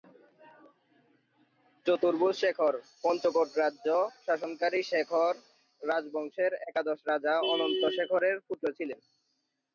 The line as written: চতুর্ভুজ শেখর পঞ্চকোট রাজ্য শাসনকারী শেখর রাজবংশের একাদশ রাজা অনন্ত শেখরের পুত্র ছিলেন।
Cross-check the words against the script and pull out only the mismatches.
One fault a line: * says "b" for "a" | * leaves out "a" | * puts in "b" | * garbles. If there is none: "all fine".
all fine